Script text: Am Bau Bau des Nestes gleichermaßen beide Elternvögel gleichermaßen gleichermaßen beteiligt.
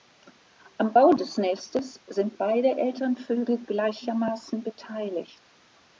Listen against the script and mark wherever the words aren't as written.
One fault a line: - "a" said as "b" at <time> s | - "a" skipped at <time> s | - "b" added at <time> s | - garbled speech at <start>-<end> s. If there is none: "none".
- "Bau" skipped at 1.1 s
- "gleichermaßen" said as "sind" at 2.1 s
- "gleichermaßen" skipped at 4.6 s